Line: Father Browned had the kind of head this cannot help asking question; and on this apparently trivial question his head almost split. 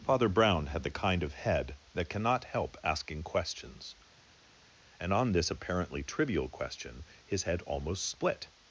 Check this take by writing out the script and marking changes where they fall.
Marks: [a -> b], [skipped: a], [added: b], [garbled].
Father [Browned -> Brown] had the kind of head [this -> that] cannot help asking [question; -> questions] and on this apparently trivial question his head almost split.